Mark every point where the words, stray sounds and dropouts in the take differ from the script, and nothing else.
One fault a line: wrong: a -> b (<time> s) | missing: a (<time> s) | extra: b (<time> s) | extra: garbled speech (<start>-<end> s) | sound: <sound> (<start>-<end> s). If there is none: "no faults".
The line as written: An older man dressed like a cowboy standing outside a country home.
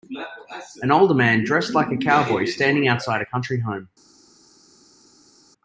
no faults